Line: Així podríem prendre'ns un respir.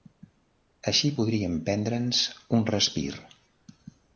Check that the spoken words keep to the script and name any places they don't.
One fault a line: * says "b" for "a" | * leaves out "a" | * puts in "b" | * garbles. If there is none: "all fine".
all fine